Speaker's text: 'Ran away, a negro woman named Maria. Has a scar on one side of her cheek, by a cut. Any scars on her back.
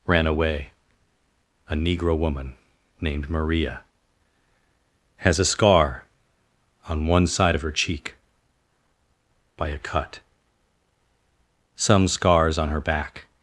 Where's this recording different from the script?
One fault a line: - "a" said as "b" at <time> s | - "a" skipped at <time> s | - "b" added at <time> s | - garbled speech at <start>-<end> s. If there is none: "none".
- "Any" said as "Some" at 11.7 s